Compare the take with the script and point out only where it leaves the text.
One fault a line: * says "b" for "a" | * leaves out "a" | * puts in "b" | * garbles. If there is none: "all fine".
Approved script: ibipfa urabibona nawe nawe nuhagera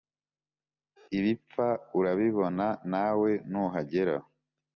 * leaves out "nawe"